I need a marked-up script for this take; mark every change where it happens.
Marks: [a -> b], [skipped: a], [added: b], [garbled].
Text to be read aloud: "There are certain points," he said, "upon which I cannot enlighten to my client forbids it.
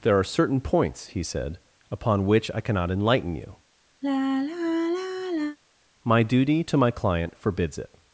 "There are certain points," he said, "upon which I cannot enlighten [added: you My duty] to my client forbids it.